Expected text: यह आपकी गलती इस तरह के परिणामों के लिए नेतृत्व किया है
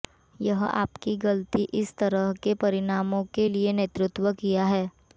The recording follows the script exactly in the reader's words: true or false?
true